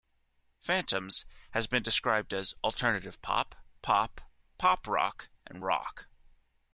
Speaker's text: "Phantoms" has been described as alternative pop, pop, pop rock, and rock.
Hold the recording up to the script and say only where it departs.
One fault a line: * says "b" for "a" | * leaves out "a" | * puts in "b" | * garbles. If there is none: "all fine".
all fine